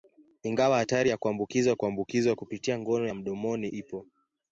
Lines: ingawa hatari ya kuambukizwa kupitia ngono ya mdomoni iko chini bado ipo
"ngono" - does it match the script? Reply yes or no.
yes